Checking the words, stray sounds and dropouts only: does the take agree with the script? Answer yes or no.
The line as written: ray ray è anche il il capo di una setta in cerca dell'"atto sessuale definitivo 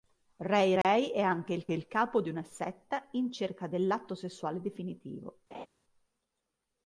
no